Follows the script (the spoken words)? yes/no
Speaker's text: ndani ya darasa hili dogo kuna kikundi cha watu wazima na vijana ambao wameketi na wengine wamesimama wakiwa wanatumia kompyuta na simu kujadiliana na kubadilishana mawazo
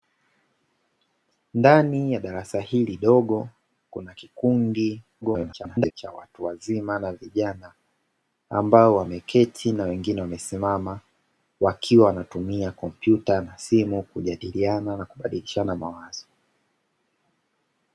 no